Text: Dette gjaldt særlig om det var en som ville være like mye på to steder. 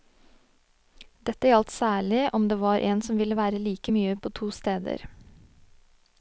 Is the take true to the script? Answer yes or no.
yes